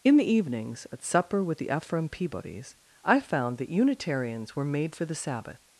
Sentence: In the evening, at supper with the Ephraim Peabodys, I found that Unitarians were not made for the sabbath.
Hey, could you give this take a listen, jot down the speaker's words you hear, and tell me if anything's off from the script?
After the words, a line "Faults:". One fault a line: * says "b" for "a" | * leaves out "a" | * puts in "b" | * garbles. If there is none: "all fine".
In the evenings, at supper with the Ephraim Peabodys, I found that Unitarians were made for the sabbath.
Faults:
* says "evenings" for "evening"
* leaves out "not"